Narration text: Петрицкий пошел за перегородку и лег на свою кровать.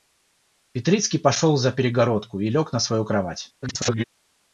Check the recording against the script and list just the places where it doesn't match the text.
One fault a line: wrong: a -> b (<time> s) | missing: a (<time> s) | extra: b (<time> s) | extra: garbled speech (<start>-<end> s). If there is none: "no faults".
extra: garbled speech (3.6-4.0 s)